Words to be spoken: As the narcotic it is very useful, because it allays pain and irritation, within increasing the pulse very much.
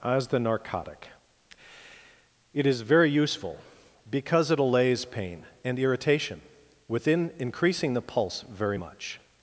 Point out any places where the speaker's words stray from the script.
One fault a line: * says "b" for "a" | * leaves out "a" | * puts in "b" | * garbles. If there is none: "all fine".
all fine